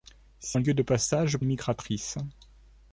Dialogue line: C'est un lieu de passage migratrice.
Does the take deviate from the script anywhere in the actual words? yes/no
no